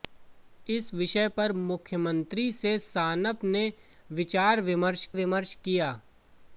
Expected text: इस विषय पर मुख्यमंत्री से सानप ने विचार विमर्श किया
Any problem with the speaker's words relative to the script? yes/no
yes